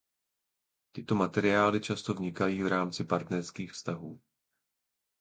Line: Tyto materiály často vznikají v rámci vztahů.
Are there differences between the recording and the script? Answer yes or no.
yes